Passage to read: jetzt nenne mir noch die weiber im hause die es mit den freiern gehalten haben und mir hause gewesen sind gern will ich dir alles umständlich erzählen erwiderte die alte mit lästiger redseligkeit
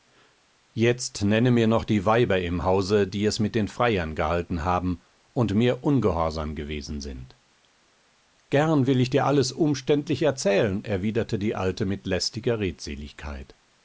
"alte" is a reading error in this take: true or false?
false